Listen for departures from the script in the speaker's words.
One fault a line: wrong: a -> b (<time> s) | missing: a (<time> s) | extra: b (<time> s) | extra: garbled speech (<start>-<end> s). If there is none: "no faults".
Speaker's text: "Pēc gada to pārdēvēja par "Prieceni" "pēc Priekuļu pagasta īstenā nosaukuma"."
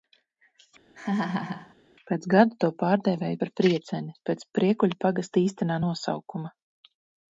no faults